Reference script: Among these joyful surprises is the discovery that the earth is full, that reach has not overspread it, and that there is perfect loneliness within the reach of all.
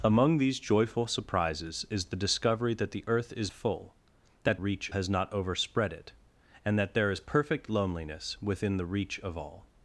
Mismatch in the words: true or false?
false